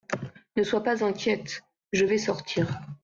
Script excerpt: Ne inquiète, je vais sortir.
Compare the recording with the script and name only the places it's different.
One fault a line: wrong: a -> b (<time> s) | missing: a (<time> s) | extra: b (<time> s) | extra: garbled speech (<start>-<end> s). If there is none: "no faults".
extra: sois pas (0.6 s)